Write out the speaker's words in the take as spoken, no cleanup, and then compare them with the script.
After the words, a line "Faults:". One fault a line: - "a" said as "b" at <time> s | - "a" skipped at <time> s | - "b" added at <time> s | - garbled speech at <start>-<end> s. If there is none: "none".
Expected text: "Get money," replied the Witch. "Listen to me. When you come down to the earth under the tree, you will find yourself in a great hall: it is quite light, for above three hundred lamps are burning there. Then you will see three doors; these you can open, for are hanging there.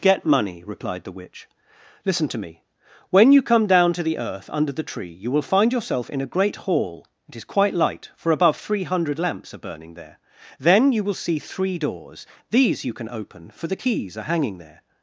"Get money," replied the Witch. "Listen to me. When you come down to the earth under the tree, you will find yourself in a great hall: it is quite light, for above three hundred lamps are burning there. Then you will see three doors; these you can open, for the keys are hanging there.
Faults:
- "the keys" added at 13.7 s